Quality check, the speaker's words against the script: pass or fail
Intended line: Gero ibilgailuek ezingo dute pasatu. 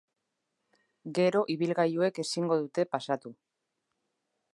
pass